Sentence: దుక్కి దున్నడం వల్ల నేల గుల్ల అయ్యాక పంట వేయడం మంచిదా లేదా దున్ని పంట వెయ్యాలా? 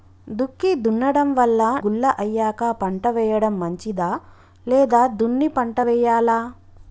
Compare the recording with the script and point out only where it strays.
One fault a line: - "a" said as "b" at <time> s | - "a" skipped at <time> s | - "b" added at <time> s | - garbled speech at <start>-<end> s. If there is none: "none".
- "నేల" skipped at 1.6 s